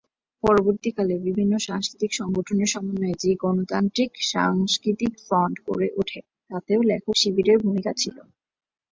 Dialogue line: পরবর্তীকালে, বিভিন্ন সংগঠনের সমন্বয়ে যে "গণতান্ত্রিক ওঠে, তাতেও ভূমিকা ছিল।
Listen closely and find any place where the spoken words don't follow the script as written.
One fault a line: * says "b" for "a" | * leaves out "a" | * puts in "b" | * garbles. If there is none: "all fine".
* puts in "সাংস্কৃতিক"
* puts in "সাংস্কৃতিক ফ্রন্ট গড়ে"
* puts in "লেখক শিবিরের"